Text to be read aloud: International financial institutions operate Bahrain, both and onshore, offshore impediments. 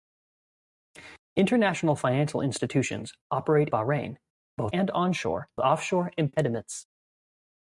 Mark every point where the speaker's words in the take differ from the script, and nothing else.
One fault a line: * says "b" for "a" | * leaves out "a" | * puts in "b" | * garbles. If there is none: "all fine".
all fine